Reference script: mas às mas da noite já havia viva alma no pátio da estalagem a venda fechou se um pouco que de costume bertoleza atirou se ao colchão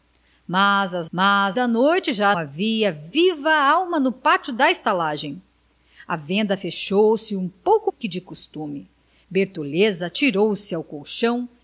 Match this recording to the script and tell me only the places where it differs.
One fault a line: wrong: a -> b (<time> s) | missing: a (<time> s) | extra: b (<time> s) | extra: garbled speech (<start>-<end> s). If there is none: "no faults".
no faults